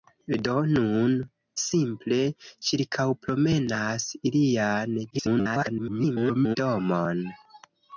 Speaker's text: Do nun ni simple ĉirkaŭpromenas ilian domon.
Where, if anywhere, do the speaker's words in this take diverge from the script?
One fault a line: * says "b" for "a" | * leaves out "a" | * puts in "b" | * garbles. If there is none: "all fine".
* leaves out "ni"
* garbles